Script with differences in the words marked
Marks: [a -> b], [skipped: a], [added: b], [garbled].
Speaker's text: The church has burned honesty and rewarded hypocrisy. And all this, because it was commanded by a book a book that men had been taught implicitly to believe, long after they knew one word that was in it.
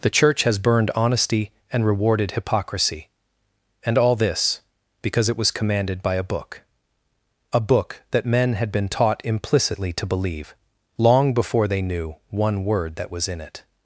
The church has burned honesty and rewarded hypocrisy. And all this, because it was commanded by a book a book that men had been taught implicitly to believe, long [after -> before] they knew one word that was in it.